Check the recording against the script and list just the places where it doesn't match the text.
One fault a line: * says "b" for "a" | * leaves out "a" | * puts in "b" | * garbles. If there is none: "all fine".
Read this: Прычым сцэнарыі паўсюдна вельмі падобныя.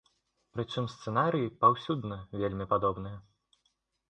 all fine